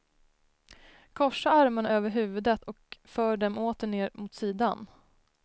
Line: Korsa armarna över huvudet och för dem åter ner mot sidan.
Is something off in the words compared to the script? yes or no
no